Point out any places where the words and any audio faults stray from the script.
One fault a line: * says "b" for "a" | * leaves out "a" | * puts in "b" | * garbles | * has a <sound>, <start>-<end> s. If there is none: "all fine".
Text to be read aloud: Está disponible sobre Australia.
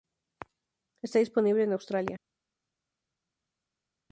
* says "en" for "sobre"